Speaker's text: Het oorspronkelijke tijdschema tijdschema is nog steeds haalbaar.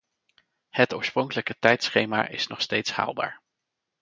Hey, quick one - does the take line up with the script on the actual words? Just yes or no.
no